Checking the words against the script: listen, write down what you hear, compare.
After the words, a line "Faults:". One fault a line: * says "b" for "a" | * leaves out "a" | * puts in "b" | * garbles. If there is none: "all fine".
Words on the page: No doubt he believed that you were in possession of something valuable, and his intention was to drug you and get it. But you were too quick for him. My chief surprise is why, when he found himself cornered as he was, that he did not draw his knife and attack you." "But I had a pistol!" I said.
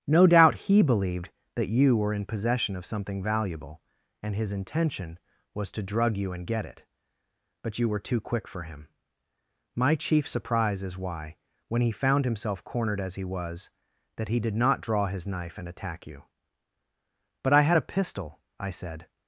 No doubt he believed that you were in possession of something valuable, and his intention was to drug you and get it. But you were too quick for him. My chief surprise is why, when he found himself cornered as he was, that he did not draw his knife and attack you." "But I had a pistol!" I said.
Faults:
all fine